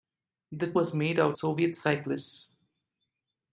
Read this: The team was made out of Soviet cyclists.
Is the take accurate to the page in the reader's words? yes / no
no